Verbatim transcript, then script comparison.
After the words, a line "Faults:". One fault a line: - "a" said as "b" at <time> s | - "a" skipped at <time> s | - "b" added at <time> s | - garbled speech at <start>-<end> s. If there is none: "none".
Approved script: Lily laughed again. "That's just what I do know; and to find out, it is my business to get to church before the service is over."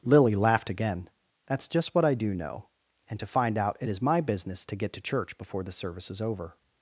Lily laughed again. "That's just what I do know; and to find out, it is my business to get to church before the service is over."
Faults:
none